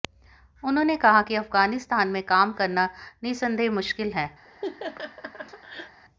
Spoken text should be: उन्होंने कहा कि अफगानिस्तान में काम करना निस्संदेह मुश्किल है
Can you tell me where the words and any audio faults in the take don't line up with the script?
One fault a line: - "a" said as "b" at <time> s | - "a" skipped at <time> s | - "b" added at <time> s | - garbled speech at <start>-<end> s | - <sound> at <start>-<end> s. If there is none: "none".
- laugh at 4.5-6.0 s